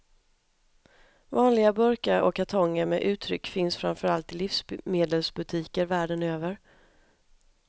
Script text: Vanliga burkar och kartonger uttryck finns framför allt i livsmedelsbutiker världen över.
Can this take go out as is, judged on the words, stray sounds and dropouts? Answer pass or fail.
fail